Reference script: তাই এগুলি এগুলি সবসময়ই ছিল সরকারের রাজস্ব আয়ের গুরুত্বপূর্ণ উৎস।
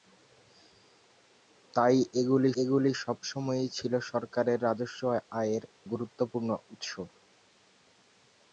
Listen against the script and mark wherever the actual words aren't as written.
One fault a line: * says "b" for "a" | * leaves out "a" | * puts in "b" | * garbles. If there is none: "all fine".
all fine